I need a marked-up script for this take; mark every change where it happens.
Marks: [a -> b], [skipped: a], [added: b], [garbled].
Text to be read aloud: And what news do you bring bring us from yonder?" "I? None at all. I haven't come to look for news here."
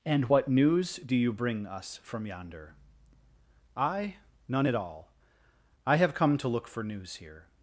And what news do you bring [skipped: bring] us from yonder?" "I? None at all. I [haven't -> have] come to look for news here."